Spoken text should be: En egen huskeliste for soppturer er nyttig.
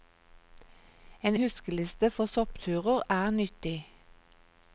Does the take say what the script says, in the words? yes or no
no